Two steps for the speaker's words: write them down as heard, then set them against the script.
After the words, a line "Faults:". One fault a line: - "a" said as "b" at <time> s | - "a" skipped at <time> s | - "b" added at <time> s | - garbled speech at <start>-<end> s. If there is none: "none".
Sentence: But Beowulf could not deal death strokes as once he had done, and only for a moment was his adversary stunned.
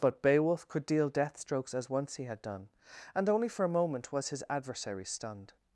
But Beowulf could deal death strokes as once he had done, and only for a moment was his adversary stunned.
Faults:
- "not" skipped at 0.8 s